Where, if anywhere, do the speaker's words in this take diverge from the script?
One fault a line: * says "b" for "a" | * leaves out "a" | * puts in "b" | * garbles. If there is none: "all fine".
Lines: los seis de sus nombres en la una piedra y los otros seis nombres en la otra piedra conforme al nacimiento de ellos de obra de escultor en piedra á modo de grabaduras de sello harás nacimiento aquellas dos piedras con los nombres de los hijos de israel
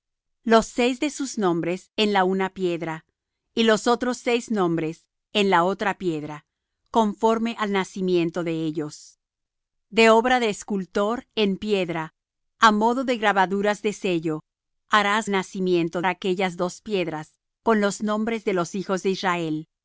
all fine